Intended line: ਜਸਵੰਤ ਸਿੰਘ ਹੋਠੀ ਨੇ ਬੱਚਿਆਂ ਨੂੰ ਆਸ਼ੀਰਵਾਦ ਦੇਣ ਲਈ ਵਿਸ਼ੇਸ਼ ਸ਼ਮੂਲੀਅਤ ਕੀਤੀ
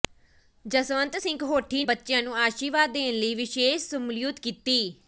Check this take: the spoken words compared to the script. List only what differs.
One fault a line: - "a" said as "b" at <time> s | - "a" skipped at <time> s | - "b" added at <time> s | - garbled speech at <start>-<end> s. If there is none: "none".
- "ਨੇ" skipped at 1.8 s